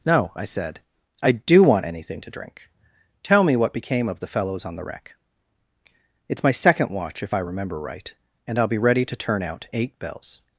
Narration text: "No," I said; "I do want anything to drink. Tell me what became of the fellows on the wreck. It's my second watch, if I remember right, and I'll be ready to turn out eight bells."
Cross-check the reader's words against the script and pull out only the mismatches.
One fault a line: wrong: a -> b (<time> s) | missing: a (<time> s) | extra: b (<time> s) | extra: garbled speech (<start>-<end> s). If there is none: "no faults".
no faults